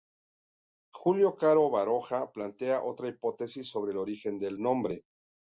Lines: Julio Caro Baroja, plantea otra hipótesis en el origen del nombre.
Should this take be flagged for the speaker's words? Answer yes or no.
yes